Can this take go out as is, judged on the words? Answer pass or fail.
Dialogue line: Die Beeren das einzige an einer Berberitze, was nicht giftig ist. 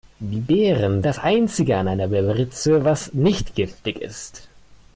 pass